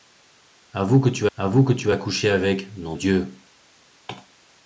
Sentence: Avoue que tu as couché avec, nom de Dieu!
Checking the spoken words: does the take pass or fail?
fail